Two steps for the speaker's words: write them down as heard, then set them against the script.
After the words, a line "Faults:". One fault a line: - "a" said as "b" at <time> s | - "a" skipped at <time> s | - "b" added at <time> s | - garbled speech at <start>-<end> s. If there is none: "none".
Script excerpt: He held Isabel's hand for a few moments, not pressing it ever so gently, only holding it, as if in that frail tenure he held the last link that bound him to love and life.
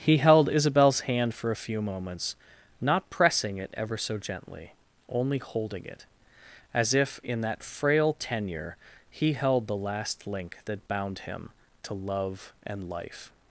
He held Isabel's hand for a few moments, not pressing it ever so gently, only holding it, as if in that frail tenure he held the last link that bound him to love and life.
Faults:
none